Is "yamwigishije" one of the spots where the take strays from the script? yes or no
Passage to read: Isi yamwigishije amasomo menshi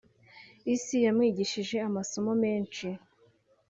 no